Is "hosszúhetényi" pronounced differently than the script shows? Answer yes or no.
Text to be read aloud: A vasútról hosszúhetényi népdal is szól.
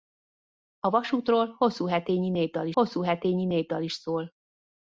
no